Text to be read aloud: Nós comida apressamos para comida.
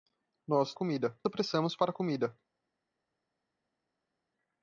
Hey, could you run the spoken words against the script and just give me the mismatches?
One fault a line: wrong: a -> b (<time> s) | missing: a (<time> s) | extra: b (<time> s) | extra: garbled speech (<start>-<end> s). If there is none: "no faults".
no faults